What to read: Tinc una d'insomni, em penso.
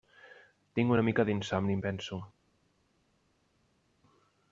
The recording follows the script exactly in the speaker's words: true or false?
false